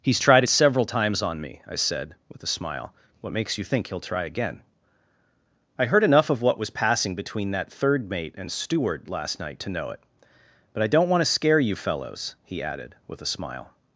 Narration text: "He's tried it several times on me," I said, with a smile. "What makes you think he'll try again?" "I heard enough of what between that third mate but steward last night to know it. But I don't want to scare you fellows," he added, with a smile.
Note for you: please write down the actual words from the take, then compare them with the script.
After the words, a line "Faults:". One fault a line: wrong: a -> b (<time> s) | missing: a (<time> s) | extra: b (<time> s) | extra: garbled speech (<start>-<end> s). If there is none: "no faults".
"He's tried it several times on me," I said, with a smile. "What makes you think he'll try again?" "I heard enough of what was passing between that third mate and steward last night to know it. But I don't want to scare you fellows," he added, with a smile.
Faults:
extra: was passing (6.6 s)
wrong: but -> and (8.4 s)